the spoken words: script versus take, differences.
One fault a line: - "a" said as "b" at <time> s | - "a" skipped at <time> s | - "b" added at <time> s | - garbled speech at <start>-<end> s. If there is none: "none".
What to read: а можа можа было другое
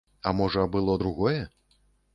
- "можа" skipped at 0.7 s